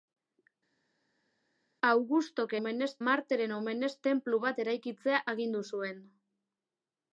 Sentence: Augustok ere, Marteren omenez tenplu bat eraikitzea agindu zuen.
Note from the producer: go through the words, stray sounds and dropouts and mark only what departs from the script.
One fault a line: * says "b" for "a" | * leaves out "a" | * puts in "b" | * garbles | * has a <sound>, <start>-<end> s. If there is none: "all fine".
* says "omenez" for "ere"